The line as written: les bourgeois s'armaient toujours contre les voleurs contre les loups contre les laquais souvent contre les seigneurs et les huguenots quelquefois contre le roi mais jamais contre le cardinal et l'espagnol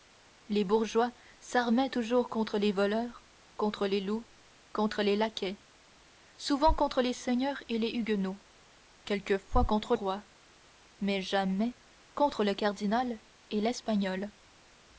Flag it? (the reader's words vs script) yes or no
yes